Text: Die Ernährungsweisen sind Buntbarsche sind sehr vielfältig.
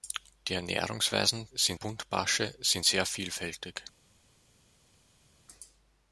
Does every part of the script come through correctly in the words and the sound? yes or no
yes